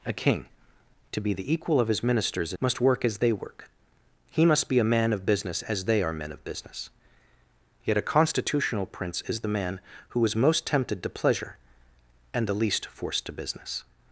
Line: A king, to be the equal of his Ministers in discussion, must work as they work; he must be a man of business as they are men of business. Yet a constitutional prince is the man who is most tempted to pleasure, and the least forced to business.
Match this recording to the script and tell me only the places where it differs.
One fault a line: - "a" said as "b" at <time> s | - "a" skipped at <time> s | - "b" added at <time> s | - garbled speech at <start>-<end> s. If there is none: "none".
- "in discussion" skipped at 2.5 s